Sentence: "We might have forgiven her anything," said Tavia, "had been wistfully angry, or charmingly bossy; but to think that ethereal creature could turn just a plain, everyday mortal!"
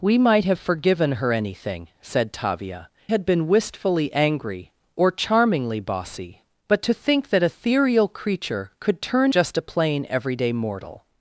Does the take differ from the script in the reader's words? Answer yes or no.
no